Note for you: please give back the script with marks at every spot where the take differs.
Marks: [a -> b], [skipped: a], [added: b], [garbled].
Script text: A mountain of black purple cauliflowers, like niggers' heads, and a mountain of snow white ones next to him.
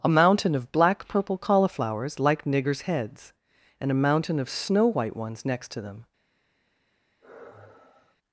A mountain of black purple cauliflowers, like niggers' heads, and a mountain of snow white ones next to [him. -> them]